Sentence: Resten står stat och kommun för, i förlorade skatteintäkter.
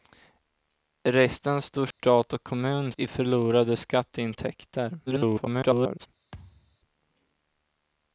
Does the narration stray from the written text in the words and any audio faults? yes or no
yes